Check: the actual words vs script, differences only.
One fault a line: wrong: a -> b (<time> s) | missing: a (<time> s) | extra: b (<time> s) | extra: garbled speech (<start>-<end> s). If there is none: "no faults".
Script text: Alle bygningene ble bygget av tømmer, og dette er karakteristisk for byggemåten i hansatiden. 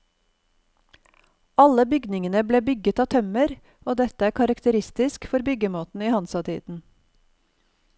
no faults